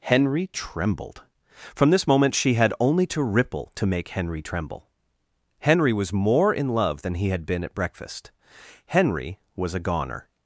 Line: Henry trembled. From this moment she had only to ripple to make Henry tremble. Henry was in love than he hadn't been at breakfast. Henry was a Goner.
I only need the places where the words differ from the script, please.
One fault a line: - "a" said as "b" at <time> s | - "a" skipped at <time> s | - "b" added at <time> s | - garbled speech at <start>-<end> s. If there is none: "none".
- "more" added at 6.1 s
- "hadn't" said as "had" at 7.3 s